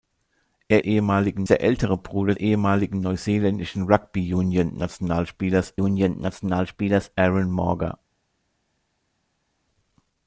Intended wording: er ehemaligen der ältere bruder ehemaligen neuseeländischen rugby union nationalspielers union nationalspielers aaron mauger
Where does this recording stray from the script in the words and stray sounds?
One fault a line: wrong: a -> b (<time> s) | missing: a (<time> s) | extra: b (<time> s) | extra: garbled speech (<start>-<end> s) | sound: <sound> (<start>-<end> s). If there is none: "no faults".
no faults